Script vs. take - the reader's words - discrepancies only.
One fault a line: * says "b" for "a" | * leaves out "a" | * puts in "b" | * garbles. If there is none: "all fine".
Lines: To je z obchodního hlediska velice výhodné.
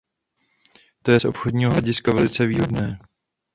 all fine